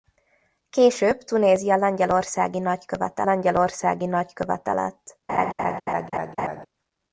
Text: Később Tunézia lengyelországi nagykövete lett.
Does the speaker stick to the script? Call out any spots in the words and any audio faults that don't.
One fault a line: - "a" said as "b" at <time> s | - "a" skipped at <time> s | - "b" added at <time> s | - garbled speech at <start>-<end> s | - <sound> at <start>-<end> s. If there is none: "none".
- "lengyelországi nagykövete" added at 3.2 s
- laugh at 5.3-6.7 s